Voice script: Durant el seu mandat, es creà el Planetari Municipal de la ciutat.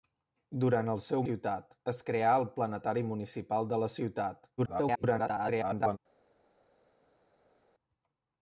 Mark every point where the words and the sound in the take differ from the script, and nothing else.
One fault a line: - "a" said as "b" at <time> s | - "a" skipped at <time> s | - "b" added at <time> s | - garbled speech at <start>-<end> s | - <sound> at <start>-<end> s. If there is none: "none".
- "mandat" said as "ciutat" at 1.3 s
- garbled speech at 4.6-6.0 s